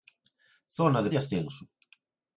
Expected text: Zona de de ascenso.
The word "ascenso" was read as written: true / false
true